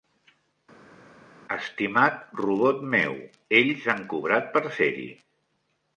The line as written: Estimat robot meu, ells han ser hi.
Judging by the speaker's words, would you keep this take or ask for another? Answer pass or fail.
fail